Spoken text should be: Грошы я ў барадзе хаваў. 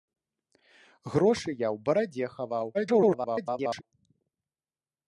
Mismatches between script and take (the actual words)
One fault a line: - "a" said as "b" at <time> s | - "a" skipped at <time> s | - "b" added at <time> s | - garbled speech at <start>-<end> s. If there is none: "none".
- garbled speech at 2.7-3.8 s